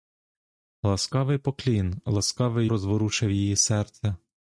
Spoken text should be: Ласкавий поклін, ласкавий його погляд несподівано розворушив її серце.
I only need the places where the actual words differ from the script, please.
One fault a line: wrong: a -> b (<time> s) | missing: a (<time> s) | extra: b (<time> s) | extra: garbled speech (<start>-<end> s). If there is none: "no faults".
missing: його погляд несподівано (2.7 s)